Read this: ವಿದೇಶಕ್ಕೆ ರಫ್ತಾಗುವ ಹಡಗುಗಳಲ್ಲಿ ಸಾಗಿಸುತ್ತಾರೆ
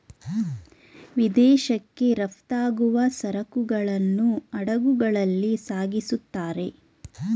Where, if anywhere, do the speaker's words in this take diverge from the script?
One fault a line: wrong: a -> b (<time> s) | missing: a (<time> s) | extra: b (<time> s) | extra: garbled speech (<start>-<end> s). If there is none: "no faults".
extra: ಸರಕುಗಳನ್ನು (3.2 s)